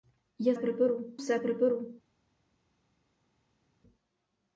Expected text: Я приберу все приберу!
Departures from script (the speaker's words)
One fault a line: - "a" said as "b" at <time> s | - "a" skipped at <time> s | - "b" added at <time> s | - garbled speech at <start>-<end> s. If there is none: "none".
none